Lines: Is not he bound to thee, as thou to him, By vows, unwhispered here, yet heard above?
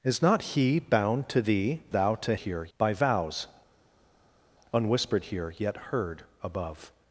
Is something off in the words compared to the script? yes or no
yes